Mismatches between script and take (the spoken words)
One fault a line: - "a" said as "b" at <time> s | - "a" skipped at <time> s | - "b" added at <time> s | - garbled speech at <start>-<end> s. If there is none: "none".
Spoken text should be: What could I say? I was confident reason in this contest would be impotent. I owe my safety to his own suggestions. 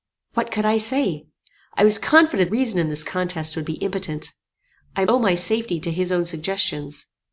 none